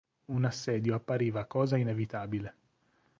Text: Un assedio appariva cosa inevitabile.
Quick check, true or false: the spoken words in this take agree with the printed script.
true